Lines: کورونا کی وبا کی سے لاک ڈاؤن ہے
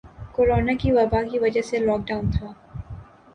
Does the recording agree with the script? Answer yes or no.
no